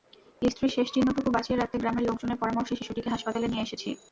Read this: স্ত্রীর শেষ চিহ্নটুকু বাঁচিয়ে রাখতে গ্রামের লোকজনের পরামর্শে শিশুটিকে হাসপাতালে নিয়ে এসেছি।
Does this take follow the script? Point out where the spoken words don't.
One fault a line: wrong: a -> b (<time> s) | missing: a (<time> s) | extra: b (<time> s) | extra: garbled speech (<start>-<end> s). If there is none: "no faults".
no faults